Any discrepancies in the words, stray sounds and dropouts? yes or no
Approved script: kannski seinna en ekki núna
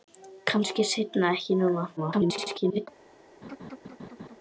yes